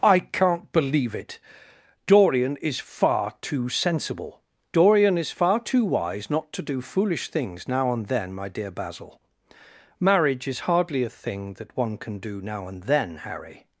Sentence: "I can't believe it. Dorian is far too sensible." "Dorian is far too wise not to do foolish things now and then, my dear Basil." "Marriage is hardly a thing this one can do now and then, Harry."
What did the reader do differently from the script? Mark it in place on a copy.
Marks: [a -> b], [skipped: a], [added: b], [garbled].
"I can't believe it. Dorian is far too sensible." "Dorian is far too wise not to do foolish things now and then, my dear Basil." "Marriage is hardly a thing [this -> that] one can do now and then, Harry."